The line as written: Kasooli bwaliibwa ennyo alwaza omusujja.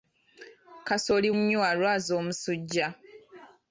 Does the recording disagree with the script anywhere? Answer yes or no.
yes